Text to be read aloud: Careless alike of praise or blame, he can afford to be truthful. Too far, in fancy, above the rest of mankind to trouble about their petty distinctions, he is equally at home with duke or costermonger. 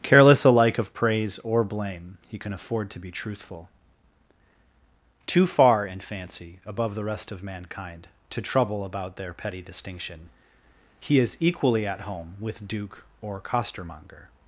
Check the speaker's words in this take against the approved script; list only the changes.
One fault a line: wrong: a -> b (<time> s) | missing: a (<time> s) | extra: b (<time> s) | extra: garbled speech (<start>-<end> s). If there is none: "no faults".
wrong: distinctions -> distinction (9.6 s)